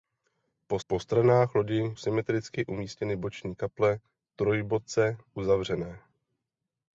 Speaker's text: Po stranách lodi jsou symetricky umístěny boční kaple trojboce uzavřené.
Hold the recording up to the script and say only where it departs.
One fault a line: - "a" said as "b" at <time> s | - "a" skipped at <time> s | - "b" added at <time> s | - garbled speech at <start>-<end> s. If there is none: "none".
- "po" added at 0.9 s
- "jsou" skipped at 1.8 s